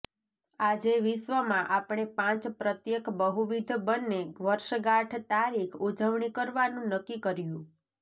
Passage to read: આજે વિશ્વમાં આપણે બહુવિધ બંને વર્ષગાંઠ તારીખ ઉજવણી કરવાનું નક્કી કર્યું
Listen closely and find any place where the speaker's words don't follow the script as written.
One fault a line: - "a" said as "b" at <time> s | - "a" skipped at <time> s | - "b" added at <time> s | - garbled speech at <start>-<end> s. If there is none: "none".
- "પાંચ પ્રત્યેક" added at 2.2 s